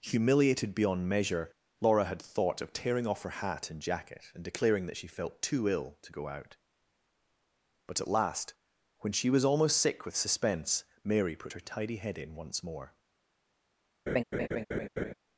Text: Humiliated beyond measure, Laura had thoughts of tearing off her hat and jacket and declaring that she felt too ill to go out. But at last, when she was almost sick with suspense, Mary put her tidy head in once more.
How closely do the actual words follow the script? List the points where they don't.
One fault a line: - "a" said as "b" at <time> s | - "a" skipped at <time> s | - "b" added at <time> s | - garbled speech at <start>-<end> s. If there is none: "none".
- "thoughts" said as "thought" at 2.2 s